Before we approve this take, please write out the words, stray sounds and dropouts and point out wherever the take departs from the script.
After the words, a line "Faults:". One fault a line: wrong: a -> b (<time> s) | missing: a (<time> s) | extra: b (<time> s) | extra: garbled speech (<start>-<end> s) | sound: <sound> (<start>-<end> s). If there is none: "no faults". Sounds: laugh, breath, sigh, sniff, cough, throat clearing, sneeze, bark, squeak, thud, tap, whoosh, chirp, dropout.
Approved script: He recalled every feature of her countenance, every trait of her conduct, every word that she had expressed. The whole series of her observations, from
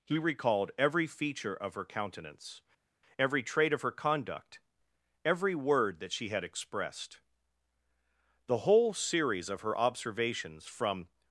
He recalled every feature of her countenance, every trait of her conduct, every word that she had expressed. The whole series of her observations, from
Faults:
no faults